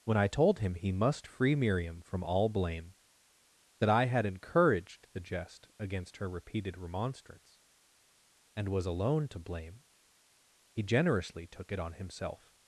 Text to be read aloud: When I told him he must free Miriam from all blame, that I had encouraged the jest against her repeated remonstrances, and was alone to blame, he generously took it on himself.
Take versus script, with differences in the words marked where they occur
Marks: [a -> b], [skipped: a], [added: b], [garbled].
When I told him he must free Miriam from all blame, that I had encouraged the jest against her repeated [remonstrances, -> remonstrance] and was alone to blame, he generously took it on himself.